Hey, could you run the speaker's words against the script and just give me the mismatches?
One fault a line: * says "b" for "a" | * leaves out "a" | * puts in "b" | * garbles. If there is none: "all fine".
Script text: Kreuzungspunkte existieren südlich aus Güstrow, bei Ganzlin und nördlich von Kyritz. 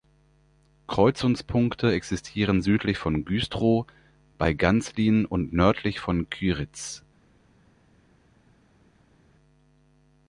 * says "von" for "aus"